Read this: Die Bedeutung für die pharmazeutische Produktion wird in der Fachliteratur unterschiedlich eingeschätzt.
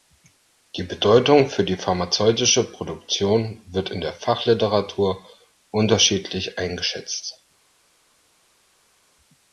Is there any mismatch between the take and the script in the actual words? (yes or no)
no